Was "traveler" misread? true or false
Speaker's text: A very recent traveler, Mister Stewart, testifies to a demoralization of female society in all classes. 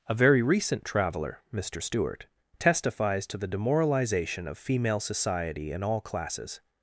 false